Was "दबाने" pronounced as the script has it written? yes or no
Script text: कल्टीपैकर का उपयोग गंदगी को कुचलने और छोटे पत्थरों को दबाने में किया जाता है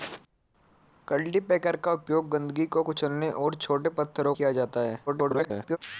no